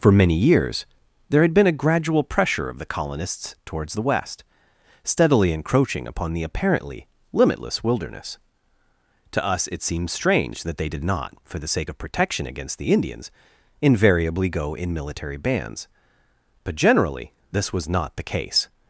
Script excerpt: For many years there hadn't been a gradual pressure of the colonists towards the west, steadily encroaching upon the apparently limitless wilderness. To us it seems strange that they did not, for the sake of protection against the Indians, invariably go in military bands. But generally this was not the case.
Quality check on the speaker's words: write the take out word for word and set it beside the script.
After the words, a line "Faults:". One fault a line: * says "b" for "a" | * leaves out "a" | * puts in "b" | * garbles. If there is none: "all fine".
For many years there had been a gradual pressure of the colonists towards the west, steadily encroaching upon the apparently limitless wilderness. To us it seems strange that they did not, for the sake of protection against the Indians, invariably go in military bands. But generally this was not the case.
Faults:
* says "had" for "hadn't"